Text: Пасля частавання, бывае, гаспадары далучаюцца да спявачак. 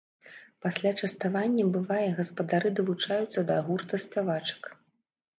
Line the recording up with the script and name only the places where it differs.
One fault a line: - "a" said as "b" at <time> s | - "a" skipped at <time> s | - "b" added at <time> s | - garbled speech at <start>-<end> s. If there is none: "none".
- "гурта" added at 3.7 s